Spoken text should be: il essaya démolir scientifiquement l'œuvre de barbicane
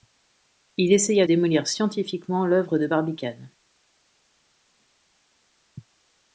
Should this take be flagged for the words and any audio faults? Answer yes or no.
no